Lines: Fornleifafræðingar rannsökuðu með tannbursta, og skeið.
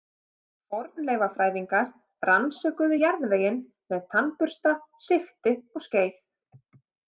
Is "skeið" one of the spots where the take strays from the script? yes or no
no